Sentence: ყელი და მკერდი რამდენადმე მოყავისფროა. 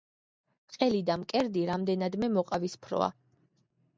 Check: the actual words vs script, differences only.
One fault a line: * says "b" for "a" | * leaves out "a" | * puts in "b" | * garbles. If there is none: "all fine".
all fine